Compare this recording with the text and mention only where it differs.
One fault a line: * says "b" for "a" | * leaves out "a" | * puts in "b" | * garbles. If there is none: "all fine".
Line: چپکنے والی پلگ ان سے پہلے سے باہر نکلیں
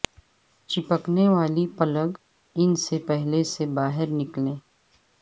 all fine